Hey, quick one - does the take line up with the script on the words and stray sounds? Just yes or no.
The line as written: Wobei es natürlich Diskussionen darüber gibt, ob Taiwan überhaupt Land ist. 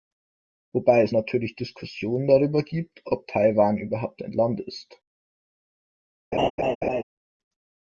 no